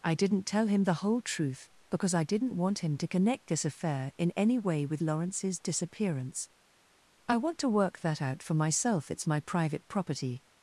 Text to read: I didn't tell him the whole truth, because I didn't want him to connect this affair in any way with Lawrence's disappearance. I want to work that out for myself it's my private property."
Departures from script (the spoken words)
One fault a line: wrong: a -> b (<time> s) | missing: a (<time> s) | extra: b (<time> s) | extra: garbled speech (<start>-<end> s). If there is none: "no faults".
no faults